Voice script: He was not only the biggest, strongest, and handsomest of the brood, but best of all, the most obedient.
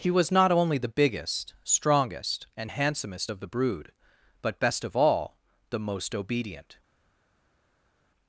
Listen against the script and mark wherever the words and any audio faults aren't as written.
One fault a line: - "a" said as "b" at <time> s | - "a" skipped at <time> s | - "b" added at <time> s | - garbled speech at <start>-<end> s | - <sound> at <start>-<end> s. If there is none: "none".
none